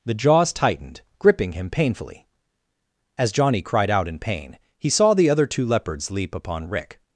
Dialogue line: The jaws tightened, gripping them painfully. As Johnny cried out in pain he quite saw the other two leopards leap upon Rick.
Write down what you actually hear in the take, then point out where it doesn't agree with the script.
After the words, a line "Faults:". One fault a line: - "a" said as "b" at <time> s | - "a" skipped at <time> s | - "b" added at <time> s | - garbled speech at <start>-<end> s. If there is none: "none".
The jaws tightened, gripping him painfully. As Johnny cried out in pain he saw the other two leopards leap upon Rick.
Faults:
- "them" said as "him" at 1.5 s
- "quite" skipped at 4.9 s